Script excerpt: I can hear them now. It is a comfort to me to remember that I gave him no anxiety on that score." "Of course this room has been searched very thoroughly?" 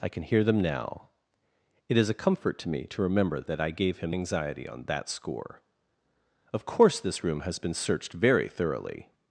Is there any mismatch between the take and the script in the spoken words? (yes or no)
yes